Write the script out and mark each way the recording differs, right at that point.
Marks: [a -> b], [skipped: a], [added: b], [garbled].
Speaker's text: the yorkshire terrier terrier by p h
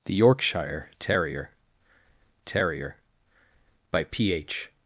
the yorkshire terrier terrier by p h